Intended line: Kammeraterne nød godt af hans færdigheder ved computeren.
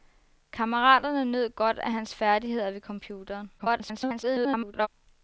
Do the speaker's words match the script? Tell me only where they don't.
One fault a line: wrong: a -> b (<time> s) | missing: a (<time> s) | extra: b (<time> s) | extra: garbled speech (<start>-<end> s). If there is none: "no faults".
extra: garbled speech (3.6-4.9 s)